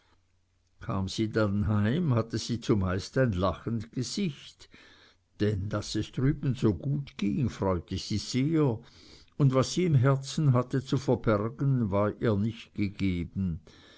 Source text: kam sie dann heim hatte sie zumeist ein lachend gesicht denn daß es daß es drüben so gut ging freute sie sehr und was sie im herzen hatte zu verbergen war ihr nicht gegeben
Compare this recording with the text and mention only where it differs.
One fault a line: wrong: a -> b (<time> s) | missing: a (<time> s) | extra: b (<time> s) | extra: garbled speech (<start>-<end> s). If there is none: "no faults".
missing: daß es (6.1 s)